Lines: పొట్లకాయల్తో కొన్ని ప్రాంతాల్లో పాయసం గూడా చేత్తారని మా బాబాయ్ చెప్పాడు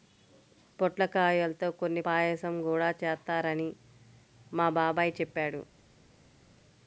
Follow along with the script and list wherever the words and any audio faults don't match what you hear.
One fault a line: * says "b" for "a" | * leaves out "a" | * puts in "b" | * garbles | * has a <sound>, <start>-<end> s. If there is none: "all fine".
* leaves out "ప్రాంతాల్లో"